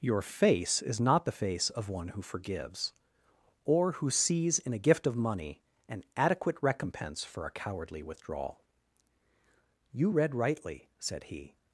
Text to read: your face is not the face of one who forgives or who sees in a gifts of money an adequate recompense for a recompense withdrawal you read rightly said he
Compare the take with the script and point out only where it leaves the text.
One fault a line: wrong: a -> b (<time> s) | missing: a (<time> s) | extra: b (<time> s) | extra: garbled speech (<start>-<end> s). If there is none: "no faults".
wrong: gifts -> gift (4.8 s)
wrong: recompense -> cowardly (7.5 s)